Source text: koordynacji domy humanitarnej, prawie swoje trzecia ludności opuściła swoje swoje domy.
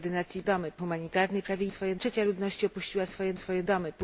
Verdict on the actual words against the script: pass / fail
pass